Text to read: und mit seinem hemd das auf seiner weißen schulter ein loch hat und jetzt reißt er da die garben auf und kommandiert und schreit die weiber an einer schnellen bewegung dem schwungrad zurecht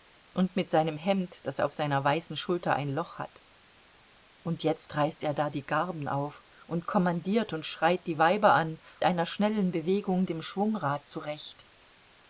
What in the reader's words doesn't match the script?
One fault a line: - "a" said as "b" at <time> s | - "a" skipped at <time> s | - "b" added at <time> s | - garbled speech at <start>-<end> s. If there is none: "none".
none